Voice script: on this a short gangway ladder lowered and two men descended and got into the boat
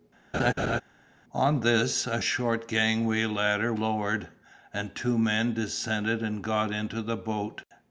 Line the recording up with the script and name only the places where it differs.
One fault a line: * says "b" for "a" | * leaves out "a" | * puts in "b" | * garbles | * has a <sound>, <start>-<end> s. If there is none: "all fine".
* has a laugh, 0.3-0.8 s